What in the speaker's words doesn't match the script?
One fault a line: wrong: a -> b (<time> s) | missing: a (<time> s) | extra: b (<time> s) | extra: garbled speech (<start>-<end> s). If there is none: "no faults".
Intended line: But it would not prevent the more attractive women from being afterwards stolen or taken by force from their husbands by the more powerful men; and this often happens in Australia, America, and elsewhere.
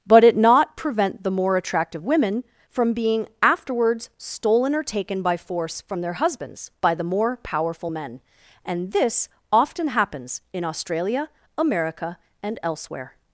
missing: would (0.3 s)